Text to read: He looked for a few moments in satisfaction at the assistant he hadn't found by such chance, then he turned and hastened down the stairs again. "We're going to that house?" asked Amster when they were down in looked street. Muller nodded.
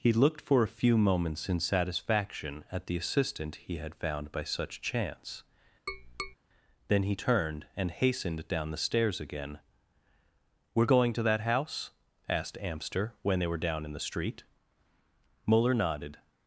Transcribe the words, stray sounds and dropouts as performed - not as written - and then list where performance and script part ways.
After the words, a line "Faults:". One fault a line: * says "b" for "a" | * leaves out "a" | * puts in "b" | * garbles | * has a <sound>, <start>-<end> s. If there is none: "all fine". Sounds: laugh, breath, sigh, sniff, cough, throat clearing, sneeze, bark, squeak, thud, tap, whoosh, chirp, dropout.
He looked for a few moments in satisfaction at the assistant he had found by such chance, then he turned and hastened down the stairs again. "We're going to that house?" asked Amster when they were down in the street. Muller nodded.
Faults:
* says "had" for "hadn't"
* has a tap, 5.9-6.4 s
* says "the" for "looked"